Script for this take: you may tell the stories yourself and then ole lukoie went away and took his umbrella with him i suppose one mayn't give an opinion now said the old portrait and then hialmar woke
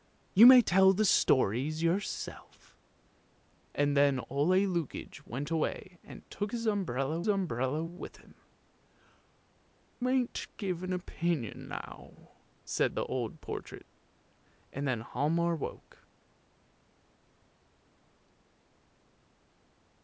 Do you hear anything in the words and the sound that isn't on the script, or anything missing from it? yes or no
yes